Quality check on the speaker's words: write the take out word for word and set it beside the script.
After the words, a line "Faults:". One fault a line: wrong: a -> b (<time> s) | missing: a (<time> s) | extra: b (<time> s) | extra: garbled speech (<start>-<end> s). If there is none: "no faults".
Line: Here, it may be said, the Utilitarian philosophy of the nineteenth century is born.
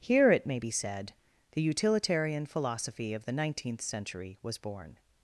Here, it may be said, the Utilitarian philosophy of the nineteenth century was born.
Faults:
wrong: is -> was (4.4 s)